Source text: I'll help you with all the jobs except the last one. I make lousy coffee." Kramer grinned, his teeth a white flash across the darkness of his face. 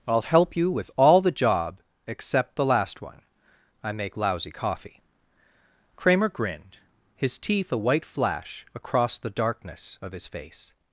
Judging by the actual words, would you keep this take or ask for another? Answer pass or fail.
fail